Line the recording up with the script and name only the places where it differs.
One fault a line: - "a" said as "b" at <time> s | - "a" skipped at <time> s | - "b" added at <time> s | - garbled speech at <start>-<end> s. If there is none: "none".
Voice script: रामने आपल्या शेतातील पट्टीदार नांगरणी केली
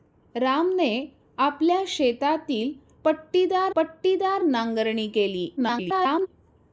- "पट्टीदार" added at 3.8 s
- garbled speech at 5.6-6.3 s